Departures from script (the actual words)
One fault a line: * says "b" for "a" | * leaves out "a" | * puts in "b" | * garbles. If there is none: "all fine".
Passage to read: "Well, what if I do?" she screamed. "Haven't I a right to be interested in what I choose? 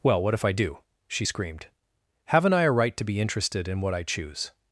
all fine